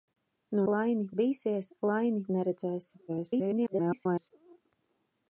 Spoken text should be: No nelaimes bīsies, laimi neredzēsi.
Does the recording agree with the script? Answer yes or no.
no